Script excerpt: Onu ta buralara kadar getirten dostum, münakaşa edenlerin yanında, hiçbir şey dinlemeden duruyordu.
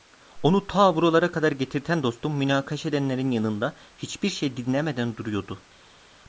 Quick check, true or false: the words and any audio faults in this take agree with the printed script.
true